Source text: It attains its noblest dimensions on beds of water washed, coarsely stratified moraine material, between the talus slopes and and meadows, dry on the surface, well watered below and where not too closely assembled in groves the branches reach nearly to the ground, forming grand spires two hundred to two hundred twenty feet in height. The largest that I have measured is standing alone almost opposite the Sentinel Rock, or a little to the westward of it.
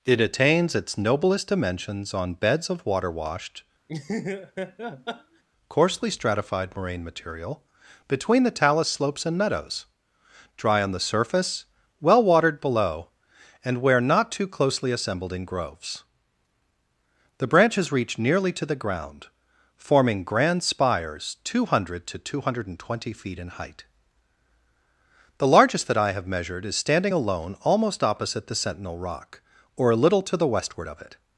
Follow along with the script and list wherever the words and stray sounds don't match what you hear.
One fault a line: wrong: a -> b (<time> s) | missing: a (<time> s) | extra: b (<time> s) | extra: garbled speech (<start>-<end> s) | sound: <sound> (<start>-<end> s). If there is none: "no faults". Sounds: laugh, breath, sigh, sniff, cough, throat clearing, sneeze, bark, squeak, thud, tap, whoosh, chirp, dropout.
sound: laugh (3.9-5.4 s)
missing: and (9.4 s)